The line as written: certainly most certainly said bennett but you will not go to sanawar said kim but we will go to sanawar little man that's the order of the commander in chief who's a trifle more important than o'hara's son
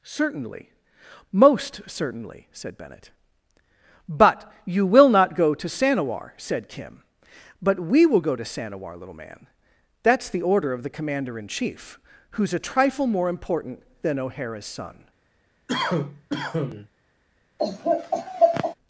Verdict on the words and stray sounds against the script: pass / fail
fail